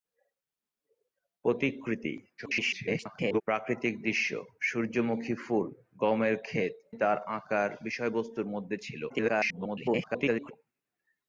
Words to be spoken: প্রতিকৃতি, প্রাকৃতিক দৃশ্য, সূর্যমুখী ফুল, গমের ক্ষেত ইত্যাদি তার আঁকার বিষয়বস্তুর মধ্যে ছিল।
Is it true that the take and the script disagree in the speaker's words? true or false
true